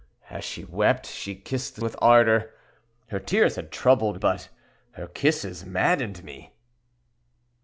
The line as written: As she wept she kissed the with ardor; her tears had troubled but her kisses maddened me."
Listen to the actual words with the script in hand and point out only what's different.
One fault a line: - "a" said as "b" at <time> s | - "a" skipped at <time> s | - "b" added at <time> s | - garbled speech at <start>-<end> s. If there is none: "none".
none